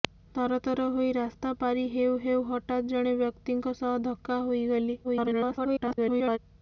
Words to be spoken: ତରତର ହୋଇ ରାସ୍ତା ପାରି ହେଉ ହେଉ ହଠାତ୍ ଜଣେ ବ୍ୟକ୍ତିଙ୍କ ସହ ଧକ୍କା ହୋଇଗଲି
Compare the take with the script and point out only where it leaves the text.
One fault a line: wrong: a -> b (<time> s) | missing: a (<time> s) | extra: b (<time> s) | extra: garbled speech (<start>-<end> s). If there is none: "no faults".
extra: garbled speech (5.0-6.4 s)